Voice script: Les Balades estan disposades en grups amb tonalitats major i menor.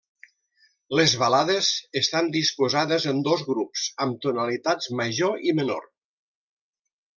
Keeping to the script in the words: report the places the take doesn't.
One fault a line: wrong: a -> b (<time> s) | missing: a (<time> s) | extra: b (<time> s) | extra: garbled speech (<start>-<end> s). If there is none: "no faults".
extra: dos (3.3 s)